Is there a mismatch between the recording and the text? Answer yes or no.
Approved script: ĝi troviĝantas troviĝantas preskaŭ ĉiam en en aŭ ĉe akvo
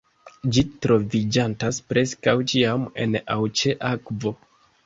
yes